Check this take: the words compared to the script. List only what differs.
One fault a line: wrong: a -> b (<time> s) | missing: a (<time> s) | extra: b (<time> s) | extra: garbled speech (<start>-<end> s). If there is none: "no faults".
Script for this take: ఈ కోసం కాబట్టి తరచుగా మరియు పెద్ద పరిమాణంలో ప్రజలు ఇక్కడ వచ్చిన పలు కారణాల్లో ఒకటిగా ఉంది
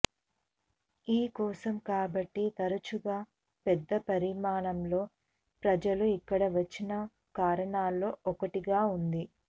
missing: మరియు (3.2 s)
missing: పలు (6.9 s)